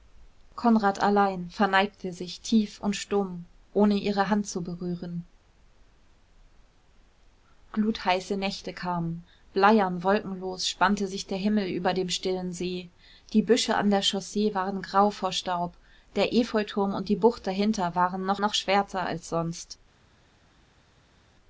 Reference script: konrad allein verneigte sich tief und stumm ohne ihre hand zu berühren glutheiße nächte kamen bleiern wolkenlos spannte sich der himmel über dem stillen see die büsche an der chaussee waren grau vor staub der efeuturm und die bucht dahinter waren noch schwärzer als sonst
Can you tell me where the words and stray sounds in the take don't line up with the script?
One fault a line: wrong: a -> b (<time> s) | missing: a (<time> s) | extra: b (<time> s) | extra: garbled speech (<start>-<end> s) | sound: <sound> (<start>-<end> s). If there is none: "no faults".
extra: noch (18.4 s)